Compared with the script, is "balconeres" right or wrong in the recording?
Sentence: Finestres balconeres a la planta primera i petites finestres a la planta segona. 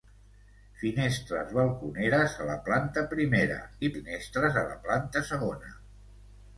right